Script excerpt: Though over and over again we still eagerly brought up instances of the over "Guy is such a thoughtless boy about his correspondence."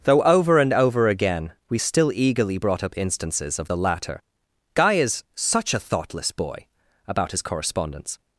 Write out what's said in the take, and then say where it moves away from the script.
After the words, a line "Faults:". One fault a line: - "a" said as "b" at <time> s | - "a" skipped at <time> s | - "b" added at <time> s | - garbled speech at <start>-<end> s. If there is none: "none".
Though over and over again we still eagerly brought up instances of the latter "Guy is such a thoughtless boy about his correspondence."
Faults:
- "over" said as "latter" at 3.8 s